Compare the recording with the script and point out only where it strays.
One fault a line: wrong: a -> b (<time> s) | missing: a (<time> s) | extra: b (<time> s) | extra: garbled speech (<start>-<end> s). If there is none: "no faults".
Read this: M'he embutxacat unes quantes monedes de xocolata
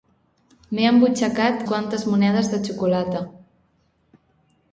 missing: unes (1.6 s)